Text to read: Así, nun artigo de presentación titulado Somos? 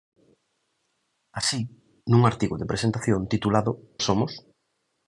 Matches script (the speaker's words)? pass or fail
pass